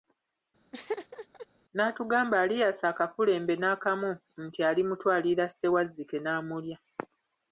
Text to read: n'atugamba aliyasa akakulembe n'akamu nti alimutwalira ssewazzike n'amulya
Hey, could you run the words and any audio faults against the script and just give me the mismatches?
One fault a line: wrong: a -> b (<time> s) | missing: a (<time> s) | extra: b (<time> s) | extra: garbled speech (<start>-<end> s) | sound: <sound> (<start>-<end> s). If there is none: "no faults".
sound: laugh (0.7-1.5 s)